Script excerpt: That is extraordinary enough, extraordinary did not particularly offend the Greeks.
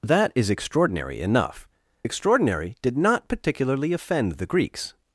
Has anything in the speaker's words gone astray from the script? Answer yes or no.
no